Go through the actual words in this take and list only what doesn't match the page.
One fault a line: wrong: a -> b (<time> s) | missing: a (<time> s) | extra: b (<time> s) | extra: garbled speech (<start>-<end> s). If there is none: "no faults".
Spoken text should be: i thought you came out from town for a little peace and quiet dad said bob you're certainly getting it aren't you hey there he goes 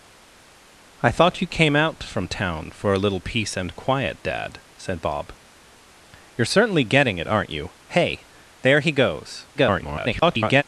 extra: garbled speech (9.5-10.6 s)